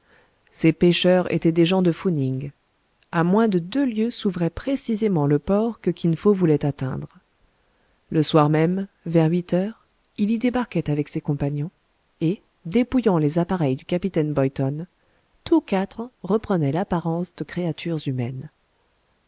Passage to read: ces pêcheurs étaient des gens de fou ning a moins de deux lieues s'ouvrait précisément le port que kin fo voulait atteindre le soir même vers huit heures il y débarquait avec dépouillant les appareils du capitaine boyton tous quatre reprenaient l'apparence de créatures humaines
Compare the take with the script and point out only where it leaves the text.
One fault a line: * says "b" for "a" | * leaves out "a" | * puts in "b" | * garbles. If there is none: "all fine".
* puts in "ses compagnons et"